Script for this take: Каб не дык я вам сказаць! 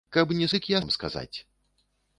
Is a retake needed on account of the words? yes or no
no